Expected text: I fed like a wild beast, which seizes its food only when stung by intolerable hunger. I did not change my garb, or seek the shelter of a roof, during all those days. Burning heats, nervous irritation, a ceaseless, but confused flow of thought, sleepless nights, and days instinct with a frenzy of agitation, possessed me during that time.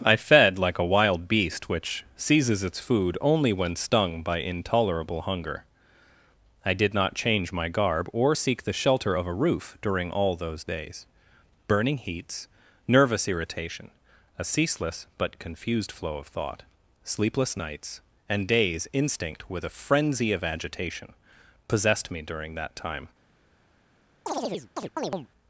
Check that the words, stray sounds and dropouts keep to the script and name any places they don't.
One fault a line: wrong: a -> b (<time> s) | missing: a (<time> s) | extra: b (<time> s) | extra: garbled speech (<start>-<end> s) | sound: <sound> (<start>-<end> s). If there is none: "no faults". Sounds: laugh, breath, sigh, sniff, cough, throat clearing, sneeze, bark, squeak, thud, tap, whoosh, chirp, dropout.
sound: chirp (24.3-25.3 s)